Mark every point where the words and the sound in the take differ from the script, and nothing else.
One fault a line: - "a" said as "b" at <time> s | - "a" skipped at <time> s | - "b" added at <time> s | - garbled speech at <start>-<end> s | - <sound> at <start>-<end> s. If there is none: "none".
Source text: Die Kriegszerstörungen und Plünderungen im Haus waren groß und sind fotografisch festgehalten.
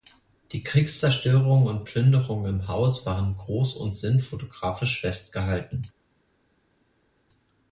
none